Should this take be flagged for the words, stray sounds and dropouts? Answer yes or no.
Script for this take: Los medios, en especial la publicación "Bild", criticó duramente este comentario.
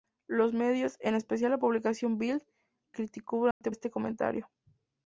yes